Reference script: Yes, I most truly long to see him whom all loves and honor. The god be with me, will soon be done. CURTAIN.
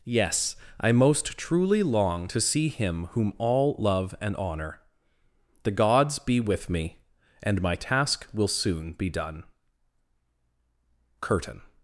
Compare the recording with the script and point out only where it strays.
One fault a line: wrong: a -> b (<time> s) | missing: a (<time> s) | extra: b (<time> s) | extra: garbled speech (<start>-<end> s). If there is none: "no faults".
wrong: loves -> love (3.8 s)
wrong: god -> gods (5.7 s)
extra: and my task (7.4 s)